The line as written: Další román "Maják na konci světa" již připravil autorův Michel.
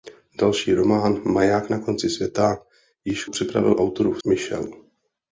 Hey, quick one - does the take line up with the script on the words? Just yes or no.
yes